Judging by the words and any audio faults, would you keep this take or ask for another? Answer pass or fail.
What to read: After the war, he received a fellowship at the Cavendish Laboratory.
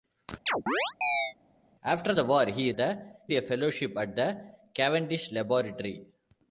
fail